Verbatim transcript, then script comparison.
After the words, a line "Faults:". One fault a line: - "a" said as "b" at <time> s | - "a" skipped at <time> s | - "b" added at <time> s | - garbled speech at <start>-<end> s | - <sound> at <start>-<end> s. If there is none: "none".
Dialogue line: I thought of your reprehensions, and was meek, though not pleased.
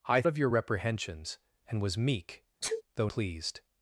I of your reprehensions, and was meek, though pleased.
Faults:
- "thought" skipped at 0.2 s
- sneeze at 2.6-2.8 s
- "not" skipped at 3.1 s